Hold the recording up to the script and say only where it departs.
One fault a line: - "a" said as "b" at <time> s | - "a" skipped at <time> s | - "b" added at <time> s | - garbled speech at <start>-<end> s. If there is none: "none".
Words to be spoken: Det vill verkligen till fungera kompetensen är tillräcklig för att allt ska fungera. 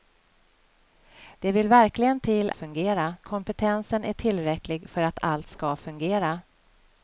none